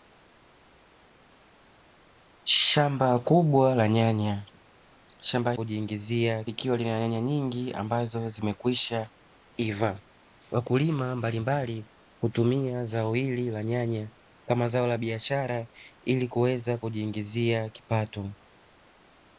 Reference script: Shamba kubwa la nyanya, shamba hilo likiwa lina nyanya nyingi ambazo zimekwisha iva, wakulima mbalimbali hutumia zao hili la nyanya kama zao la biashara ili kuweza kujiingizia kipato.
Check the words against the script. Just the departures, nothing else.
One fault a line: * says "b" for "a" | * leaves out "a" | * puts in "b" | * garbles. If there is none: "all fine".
* says "kujiingizia" for "hilo"